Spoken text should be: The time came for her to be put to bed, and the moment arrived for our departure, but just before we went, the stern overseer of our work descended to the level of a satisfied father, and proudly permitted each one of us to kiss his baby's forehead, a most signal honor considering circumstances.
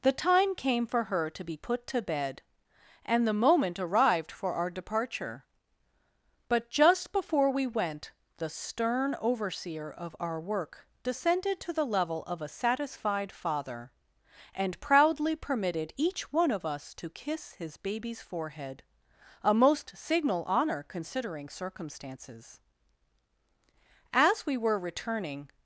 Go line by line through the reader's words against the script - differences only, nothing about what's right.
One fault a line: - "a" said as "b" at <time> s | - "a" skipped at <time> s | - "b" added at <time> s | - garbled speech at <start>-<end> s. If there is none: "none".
- "As we were returning" added at 24.1 s